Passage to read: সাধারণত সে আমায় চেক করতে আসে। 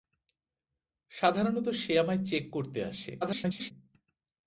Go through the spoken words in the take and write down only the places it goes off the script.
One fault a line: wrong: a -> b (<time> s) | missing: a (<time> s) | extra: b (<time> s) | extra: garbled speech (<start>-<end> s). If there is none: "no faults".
extra: garbled speech (3.2-3.7 s)